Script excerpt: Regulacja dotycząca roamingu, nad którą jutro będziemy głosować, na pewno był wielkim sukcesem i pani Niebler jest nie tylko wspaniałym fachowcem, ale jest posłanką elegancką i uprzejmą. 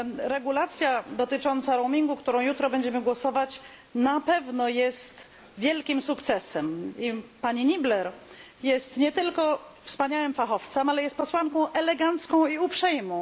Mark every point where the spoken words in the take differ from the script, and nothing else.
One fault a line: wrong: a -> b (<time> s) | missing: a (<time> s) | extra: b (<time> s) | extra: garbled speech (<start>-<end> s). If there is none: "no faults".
wrong: był -> jest (4.7 s)